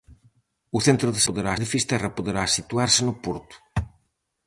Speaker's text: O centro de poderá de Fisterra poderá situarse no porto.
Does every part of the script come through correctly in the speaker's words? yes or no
yes